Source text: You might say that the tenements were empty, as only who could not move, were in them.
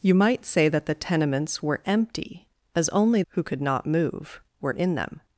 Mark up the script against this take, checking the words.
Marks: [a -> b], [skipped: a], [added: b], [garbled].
You might say that the tenements were empty, as only who could not move, were in them.